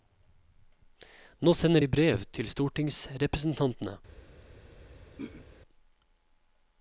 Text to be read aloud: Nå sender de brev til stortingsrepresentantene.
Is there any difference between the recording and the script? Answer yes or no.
no